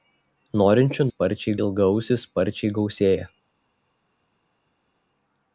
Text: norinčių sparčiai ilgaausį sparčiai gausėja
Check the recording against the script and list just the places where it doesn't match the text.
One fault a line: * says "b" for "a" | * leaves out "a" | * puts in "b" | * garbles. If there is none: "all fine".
all fine